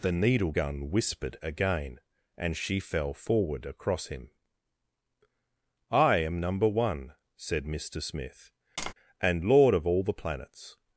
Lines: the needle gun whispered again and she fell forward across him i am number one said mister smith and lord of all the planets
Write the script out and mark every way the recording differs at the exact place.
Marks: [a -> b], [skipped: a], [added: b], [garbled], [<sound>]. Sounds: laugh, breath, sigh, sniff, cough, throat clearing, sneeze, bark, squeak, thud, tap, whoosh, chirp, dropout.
the needle gun whispered again and she fell forward across him i am number one said mister smith [tap] and lord of all the planets